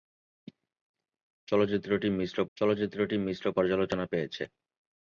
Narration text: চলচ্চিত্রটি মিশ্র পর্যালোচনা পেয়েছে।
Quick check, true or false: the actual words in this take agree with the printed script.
false